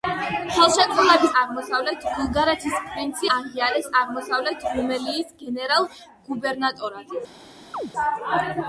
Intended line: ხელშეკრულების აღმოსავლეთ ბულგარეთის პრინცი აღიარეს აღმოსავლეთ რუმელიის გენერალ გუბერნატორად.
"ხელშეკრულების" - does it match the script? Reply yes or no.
yes